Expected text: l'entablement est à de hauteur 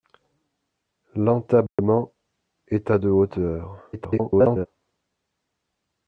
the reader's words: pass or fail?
fail